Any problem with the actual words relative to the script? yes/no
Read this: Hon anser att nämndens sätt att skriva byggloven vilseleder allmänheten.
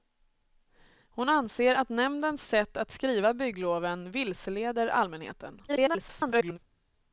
yes